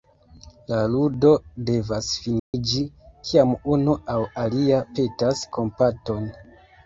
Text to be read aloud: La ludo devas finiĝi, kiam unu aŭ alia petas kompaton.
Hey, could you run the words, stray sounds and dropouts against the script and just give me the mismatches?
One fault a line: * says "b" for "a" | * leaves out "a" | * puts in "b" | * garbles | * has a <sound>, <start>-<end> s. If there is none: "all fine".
* has a dropout, 2.4-2.5 s